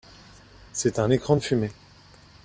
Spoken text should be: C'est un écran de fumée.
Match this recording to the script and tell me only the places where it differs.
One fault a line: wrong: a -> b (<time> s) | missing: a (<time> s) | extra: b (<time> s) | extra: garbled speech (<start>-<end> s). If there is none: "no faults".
no faults